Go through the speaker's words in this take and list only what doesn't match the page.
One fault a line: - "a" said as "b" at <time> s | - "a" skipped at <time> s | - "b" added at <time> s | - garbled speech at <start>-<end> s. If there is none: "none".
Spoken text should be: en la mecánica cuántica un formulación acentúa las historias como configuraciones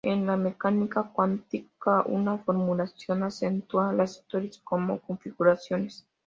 - "un" said as "una" at 2.1 s